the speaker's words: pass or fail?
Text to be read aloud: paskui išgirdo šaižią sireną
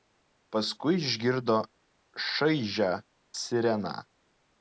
pass